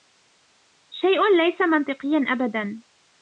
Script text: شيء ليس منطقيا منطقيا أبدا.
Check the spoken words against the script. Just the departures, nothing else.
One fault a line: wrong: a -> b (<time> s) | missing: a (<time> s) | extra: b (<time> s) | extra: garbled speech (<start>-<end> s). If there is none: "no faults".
missing: منطقيا (2.2 s)